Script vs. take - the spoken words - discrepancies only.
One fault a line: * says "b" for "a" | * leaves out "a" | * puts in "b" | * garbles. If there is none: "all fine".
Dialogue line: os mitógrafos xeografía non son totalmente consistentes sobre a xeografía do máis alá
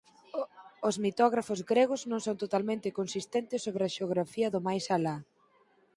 * says "gregos" for "xeografía"